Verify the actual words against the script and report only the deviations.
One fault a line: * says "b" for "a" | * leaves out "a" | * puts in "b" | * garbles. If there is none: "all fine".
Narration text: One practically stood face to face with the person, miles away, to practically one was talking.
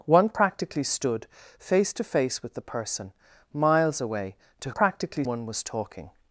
all fine